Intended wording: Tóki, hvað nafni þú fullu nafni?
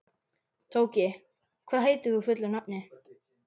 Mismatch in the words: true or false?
true